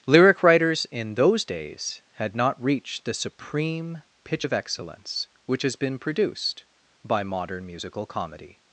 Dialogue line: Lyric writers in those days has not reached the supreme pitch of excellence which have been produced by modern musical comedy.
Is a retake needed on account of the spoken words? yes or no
yes